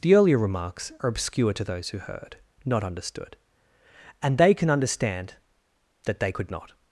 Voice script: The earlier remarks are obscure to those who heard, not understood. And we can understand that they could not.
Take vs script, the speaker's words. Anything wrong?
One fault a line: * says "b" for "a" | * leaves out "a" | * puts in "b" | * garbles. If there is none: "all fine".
* says "they" for "we"